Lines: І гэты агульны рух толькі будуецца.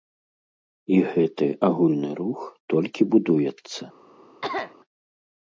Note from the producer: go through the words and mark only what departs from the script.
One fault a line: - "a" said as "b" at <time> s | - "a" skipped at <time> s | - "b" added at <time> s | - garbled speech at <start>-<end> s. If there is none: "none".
none